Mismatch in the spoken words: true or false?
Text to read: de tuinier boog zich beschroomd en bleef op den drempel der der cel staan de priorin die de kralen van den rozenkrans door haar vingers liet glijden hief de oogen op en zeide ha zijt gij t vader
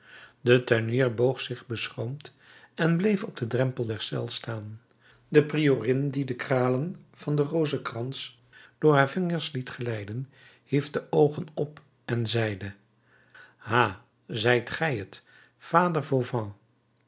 true